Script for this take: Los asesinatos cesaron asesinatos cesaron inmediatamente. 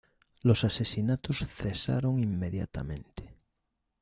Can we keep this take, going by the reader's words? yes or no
no